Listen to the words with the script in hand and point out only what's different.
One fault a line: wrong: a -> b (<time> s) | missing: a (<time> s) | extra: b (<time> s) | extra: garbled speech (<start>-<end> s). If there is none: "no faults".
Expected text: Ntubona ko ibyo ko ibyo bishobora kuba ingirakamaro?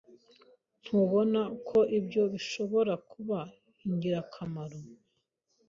missing: ko ibyo (2.2 s)